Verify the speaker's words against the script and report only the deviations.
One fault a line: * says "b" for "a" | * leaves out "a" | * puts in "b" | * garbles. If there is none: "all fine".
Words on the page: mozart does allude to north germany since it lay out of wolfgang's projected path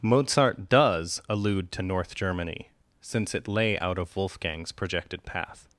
all fine